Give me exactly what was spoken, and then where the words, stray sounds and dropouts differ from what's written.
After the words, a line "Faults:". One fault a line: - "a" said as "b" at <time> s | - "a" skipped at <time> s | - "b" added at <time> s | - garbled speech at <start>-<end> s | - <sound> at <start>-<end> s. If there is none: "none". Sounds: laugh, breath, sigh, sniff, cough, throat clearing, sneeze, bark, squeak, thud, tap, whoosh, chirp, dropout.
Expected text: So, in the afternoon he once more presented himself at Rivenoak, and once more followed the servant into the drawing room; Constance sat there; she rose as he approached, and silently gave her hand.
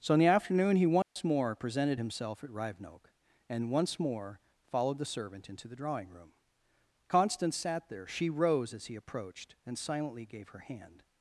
So, in the afternoon he once more presented himself at Rivenoak, and once more followed the servant into the drawing room; Constance sat there; she rose as he approached, and silently gave her hand.
Faults:
- dropout at 1.0-1.2 s